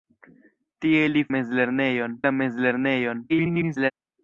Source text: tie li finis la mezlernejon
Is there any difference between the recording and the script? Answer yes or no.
yes